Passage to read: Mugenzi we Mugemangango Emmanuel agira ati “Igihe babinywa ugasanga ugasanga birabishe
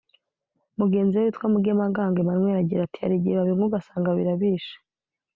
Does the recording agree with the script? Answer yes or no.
no